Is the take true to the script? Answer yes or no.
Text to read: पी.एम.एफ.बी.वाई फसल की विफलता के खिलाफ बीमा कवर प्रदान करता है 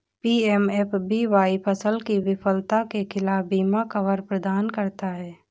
yes